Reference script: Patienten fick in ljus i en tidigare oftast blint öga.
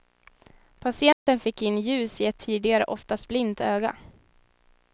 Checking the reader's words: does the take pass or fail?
fail